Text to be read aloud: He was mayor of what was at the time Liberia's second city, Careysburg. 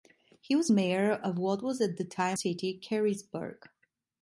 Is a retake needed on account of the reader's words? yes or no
yes